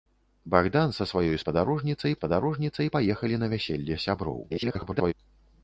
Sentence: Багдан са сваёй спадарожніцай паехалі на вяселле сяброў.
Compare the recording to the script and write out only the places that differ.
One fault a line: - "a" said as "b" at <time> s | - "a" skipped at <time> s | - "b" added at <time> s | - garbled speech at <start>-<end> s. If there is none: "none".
- "спадарожніцай" added at 2.2 s
- garbled speech at 4.5-5.1 s